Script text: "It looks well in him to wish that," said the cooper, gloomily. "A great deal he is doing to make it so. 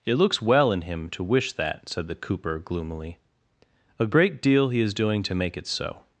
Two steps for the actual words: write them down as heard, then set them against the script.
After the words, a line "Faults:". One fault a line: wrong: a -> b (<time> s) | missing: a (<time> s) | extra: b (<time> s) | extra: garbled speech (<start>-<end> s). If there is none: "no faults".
"It looks well in him to wish that," said the cooper, gloomily. "A great deal he is doing to make it so.
Faults:
no faults